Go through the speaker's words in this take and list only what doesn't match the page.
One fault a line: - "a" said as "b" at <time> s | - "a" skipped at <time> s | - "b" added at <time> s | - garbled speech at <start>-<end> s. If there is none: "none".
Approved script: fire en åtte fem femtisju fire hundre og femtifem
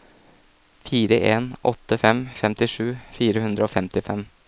none